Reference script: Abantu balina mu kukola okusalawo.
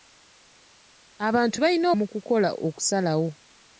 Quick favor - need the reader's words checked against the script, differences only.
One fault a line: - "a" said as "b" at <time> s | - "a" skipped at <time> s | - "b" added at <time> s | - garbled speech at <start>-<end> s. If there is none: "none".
none